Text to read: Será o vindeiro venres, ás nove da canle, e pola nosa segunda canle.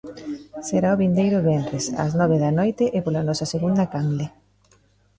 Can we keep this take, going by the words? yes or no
no